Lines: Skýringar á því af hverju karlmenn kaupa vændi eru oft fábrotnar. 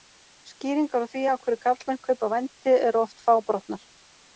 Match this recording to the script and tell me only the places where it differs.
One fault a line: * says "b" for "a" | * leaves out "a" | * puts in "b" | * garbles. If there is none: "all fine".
all fine